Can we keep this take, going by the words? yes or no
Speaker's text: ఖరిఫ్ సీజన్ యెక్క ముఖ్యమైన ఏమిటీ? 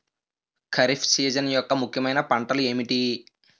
no